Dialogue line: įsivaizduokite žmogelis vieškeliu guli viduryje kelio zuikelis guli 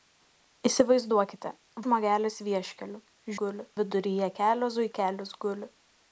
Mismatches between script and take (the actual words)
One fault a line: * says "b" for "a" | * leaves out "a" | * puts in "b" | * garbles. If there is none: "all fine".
all fine